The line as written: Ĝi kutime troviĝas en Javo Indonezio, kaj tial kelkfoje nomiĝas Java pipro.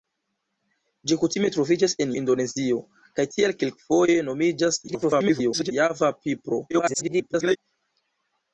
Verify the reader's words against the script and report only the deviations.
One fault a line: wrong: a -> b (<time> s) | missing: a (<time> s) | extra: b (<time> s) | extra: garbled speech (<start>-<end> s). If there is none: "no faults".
missing: Javo (2.1 s)
extra: garbled speech (4.9-5.7 s)
extra: garbled speech (6.7-7.6 s)